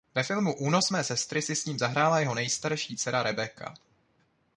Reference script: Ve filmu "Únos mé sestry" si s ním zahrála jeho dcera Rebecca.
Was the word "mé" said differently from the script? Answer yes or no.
no